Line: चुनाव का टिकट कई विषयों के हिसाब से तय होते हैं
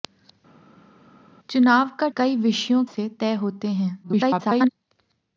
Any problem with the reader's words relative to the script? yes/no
yes